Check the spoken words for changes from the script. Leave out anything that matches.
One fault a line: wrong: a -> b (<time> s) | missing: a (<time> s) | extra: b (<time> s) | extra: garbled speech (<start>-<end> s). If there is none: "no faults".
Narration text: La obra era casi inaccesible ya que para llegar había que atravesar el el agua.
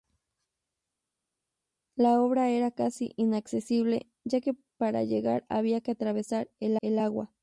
no faults